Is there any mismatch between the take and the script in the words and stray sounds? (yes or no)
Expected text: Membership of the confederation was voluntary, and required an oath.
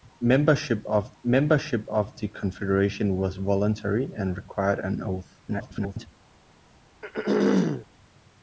yes